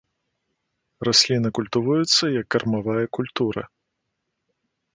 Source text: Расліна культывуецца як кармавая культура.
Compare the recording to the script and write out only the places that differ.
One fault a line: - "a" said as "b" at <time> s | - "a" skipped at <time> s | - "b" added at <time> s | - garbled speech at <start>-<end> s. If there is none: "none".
none